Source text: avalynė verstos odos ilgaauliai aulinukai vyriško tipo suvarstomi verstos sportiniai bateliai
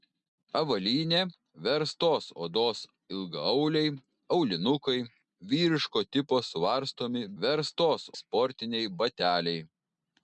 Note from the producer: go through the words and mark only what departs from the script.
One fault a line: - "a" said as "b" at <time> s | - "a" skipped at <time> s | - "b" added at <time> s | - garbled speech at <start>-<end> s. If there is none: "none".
none